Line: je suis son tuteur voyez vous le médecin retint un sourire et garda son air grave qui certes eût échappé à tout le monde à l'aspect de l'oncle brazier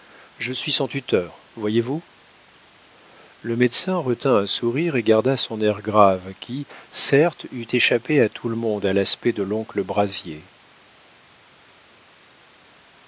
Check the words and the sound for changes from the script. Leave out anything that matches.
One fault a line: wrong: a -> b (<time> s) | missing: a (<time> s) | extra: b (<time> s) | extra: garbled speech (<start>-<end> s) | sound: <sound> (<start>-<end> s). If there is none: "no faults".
no faults